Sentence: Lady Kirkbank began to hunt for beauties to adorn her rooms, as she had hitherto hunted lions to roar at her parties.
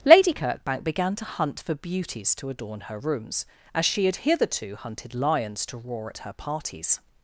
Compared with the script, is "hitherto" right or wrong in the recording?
right